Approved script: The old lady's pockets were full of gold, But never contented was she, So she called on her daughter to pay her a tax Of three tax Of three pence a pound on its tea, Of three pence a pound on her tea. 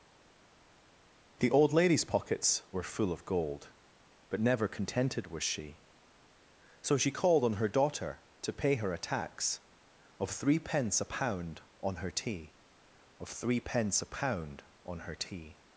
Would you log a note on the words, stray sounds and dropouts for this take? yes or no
yes